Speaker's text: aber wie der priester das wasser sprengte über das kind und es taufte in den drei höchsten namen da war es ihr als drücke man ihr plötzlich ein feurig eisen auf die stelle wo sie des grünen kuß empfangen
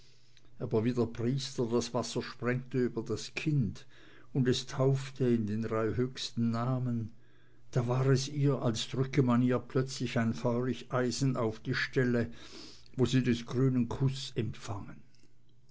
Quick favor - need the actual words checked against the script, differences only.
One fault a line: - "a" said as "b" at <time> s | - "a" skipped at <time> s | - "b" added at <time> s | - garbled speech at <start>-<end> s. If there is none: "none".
none